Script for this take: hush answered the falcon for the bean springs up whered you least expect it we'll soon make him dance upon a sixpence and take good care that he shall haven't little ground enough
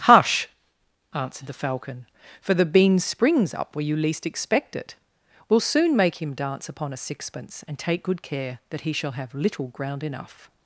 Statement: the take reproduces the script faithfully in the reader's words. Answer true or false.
false